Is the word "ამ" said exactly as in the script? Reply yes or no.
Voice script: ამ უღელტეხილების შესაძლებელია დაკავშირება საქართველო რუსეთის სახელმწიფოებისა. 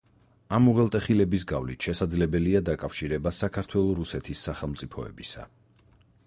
yes